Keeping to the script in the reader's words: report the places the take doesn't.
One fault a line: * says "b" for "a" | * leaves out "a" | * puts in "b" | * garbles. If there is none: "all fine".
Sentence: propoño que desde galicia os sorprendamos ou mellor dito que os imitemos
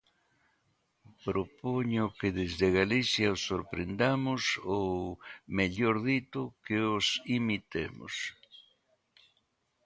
all fine